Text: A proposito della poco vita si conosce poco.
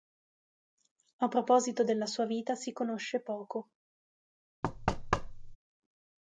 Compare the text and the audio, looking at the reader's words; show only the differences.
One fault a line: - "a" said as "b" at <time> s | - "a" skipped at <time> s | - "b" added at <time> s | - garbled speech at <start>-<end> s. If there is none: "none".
- "poco" said as "sua" at 2.1 s